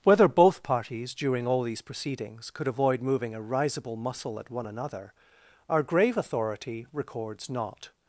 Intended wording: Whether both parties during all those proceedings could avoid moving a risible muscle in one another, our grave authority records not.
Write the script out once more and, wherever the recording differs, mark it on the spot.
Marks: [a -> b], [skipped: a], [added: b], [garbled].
Whether both parties during all [those -> these] proceedings could avoid moving a risible muscle [in -> at] one another, our grave authority records not.